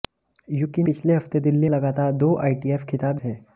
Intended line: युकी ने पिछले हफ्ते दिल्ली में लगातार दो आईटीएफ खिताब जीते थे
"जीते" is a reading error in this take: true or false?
true